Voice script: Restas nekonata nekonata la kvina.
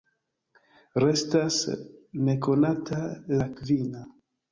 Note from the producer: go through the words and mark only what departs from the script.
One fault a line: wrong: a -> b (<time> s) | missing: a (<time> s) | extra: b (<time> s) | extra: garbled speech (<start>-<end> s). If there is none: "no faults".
missing: nekonata (3.0 s)